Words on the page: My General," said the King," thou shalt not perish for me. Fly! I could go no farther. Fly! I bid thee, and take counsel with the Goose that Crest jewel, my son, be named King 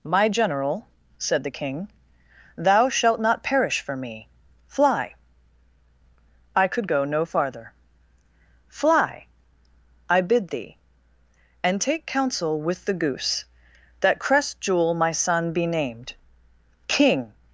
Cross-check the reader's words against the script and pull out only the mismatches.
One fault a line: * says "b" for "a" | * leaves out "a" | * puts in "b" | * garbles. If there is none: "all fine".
all fine